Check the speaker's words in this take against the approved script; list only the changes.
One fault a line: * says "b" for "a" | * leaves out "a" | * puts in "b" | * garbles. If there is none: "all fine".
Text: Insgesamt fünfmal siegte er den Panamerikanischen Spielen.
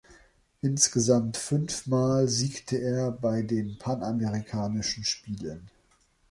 * puts in "bei"